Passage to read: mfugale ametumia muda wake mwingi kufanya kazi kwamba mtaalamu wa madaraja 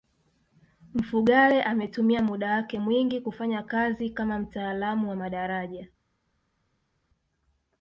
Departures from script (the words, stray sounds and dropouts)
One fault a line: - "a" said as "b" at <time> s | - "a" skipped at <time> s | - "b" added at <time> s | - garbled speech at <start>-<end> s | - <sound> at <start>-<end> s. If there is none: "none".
- "kwamba" said as "kama" at 4.1 s